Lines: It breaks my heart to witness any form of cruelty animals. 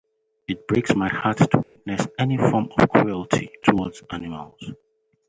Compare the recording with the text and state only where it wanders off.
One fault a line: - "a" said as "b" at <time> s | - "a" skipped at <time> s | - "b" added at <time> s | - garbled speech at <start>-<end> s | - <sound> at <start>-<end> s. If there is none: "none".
- dropout at 1.6-1.8 s
- "towards" added at 3.6 s